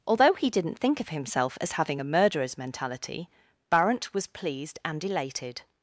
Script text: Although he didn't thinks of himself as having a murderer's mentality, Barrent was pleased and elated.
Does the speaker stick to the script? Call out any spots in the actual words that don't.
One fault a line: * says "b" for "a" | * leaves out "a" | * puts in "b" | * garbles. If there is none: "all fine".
* says "think" for "thinks"